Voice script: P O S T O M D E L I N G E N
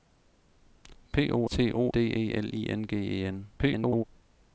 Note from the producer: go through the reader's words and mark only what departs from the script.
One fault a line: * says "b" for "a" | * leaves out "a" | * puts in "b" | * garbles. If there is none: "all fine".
* leaves out "S"
* leaves out "M"
* garbles